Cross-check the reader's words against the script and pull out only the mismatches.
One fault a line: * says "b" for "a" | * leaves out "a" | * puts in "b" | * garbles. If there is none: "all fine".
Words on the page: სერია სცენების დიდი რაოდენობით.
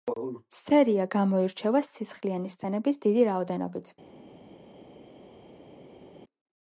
* puts in "გამოირჩევა სისხლიანი"